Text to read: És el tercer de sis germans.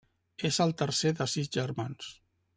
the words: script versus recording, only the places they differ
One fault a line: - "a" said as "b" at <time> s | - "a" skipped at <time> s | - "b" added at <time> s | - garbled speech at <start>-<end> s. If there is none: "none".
none